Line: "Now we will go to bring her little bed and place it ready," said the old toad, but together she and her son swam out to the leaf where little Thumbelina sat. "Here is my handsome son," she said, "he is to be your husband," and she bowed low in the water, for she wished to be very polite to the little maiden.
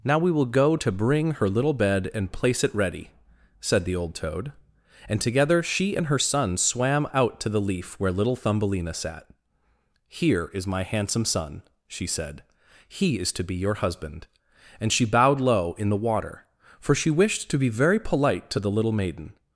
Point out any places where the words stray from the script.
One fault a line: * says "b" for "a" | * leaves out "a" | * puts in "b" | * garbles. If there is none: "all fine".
* says "and" for "but"